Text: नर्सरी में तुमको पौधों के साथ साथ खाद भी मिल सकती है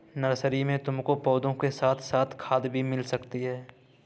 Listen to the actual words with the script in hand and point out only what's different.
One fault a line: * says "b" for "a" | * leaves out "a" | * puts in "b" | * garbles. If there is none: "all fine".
all fine